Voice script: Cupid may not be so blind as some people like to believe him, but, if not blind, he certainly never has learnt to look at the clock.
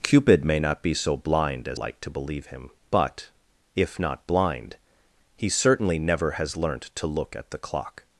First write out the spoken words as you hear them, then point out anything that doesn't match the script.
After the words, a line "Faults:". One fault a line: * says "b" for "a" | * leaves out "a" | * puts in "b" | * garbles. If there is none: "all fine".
Cupid may not be so blind as like to believe him, but, if not blind, he certainly never has learnt to look at the clock.
Faults:
* leaves out "some people"